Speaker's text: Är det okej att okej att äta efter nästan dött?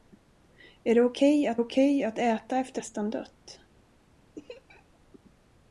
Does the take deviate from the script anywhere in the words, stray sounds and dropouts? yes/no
yes